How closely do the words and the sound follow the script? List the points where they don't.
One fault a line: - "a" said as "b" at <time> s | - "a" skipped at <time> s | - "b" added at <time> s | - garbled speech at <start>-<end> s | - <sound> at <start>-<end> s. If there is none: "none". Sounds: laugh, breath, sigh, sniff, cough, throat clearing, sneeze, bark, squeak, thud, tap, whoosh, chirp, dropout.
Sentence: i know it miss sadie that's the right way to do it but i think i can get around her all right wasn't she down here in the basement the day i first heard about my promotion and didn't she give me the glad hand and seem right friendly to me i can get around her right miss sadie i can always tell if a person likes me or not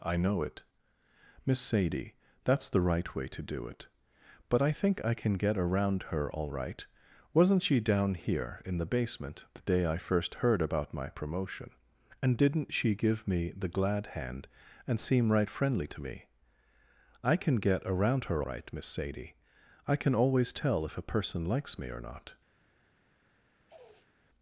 - sniff at 23.7-24.2 s